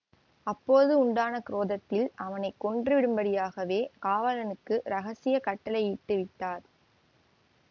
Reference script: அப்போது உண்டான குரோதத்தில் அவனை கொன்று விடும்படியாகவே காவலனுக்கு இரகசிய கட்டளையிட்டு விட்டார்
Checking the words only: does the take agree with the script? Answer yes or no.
yes